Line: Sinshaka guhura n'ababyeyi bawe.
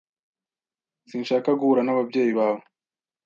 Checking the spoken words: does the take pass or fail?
pass